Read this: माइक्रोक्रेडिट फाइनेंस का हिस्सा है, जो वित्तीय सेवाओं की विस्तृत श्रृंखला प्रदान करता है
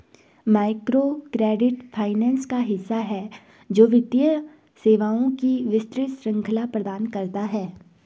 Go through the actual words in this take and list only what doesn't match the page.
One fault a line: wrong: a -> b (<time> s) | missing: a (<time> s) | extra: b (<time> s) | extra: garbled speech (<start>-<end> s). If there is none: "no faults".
no faults